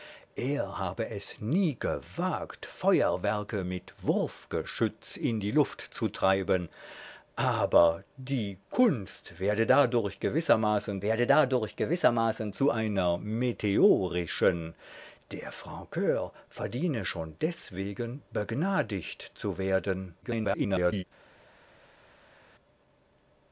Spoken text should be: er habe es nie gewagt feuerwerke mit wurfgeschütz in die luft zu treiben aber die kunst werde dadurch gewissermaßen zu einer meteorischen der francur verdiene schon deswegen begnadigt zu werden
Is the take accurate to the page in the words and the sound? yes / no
no